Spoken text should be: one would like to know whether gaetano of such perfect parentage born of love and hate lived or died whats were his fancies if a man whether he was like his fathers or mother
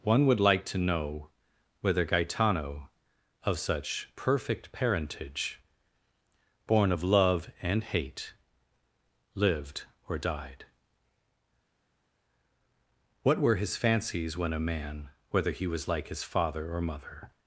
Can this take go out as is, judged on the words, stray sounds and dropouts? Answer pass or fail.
fail